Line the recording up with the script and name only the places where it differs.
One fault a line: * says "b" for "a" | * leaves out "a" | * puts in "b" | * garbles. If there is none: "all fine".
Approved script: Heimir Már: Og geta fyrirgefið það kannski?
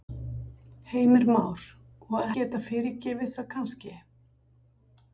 all fine